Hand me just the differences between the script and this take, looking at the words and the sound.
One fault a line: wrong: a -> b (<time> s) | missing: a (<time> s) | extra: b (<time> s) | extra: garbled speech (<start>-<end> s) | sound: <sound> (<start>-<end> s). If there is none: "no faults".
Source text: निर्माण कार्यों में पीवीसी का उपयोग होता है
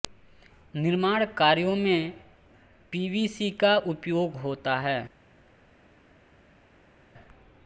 no faults